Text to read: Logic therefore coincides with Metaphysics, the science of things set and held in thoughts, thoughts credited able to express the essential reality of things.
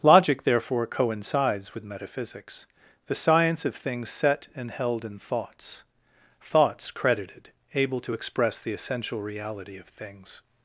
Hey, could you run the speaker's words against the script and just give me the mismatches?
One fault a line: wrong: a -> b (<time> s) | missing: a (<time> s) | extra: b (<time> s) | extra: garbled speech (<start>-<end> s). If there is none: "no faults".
no faults